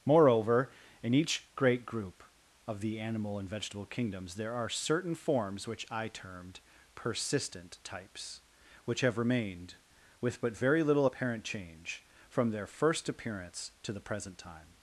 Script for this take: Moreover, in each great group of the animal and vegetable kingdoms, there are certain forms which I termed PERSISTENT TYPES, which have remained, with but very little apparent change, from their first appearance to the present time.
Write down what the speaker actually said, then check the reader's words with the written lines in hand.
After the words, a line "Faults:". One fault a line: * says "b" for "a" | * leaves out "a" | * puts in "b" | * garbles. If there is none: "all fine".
Moreover, in each great group of the animal and vegetable kingdoms, there are certain forms which I termed PERSISTENT TYPES, which have remained, with but very little apparent change, from their first appearance to the present time.
Faults:
all fine